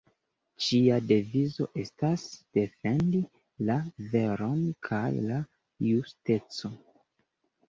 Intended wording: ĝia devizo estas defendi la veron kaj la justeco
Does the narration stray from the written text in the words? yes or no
no